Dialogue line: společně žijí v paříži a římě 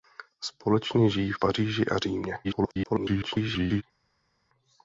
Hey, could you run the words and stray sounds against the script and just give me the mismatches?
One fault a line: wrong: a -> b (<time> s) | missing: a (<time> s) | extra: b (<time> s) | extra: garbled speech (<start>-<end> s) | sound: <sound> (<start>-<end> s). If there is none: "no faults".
extra: garbled speech (2.4-3.8 s)